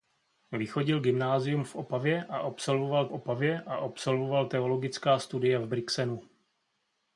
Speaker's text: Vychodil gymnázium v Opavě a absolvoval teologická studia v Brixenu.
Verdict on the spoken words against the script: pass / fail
fail